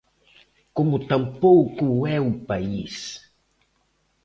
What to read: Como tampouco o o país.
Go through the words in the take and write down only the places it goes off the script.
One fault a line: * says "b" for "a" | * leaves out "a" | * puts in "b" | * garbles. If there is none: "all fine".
* puts in "é"